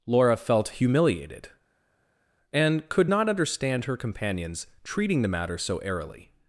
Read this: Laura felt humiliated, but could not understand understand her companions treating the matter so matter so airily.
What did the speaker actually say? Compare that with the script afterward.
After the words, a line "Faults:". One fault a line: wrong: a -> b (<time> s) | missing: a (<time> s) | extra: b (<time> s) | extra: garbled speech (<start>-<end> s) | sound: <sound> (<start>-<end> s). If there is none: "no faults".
Laura felt humiliated, and could not understand her companions treating the matter so airily.
Faults:
wrong: but -> and (2.5 s)
missing: understand (3.8 s)
missing: matter so (5.8 s)